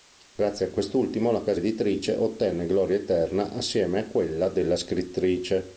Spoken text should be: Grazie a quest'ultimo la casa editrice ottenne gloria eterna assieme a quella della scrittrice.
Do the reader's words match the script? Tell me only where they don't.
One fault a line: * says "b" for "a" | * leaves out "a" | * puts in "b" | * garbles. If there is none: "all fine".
all fine